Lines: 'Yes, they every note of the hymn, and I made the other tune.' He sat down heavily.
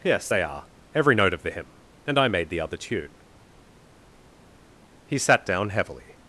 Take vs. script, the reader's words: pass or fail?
fail